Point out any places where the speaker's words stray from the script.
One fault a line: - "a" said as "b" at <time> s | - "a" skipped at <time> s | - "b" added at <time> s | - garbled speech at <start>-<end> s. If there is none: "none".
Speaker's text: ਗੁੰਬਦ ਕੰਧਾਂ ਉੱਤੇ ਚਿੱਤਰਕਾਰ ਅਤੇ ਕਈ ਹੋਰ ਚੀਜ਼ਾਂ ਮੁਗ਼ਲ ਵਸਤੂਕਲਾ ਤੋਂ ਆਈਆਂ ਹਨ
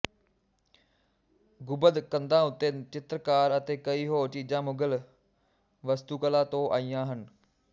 none